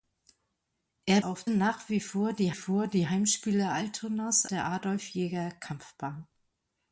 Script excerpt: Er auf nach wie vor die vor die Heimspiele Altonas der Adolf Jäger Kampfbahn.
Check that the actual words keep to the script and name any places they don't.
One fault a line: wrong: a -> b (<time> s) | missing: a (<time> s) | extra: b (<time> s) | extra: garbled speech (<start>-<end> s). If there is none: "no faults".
no faults